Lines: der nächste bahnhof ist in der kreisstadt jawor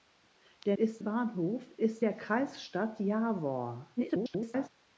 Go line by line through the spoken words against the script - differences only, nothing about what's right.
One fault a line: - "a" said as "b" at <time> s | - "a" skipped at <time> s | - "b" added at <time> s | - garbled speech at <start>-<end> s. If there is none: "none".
- "nächste" said as "ist" at 0.8 s
- "in" skipped at 2.0 s
- garbled speech at 4.0-4.7 s